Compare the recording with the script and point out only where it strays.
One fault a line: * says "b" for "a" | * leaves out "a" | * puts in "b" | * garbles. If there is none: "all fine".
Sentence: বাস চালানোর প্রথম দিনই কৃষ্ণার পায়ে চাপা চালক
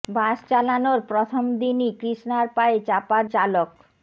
all fine